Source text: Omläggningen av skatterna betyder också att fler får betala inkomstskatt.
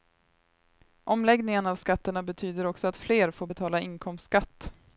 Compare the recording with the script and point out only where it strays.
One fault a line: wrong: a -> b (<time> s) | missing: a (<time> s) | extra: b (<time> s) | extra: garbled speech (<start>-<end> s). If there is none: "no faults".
no faults